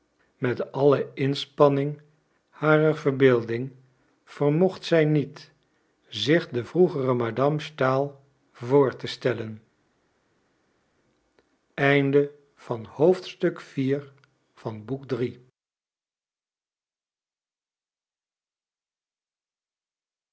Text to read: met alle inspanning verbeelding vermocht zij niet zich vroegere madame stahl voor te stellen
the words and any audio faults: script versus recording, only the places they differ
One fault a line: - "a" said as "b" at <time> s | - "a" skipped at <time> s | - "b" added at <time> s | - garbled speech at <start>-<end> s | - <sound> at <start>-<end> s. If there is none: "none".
- "harer" added at 2.5 s
- "de" added at 6.5 s